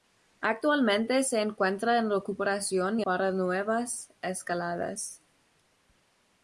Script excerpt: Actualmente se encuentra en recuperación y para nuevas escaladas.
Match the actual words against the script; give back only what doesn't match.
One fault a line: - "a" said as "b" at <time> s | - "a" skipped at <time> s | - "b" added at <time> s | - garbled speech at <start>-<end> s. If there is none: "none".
none